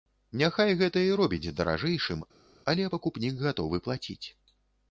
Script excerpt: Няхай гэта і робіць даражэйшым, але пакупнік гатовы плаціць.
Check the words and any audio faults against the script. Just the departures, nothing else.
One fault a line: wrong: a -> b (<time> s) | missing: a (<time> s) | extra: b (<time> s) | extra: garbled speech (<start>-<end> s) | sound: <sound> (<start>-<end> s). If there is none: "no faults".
no faults